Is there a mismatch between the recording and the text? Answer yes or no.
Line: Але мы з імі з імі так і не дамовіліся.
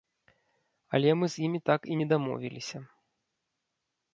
yes